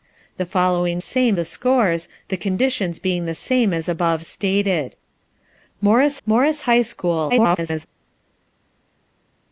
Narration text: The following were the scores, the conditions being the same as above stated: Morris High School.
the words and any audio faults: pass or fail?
fail